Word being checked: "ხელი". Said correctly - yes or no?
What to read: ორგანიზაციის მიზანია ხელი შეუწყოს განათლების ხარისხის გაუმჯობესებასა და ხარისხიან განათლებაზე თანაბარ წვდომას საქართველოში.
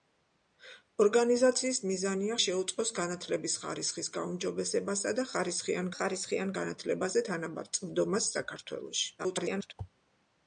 no